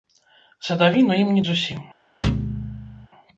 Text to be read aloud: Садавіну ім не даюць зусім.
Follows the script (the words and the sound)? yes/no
no